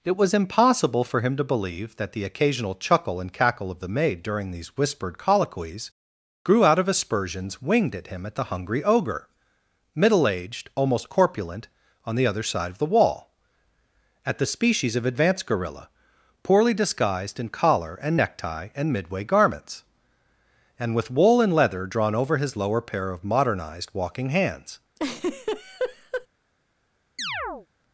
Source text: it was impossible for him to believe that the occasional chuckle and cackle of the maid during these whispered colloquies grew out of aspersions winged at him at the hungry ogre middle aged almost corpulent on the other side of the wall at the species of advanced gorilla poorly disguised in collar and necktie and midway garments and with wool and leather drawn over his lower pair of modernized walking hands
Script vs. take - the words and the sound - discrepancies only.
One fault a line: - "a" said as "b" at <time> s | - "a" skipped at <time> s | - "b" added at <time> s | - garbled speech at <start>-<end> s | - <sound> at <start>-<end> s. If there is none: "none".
- laugh at 25.0-26.3 s
- chirp at 27.2-27.7 s